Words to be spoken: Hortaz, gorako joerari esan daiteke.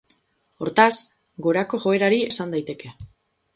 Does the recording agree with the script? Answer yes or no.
yes